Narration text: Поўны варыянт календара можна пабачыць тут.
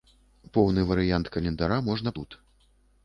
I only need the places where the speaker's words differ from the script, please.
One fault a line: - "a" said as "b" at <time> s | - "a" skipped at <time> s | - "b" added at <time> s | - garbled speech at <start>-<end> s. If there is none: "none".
- "пабачыць" skipped at 2.2 s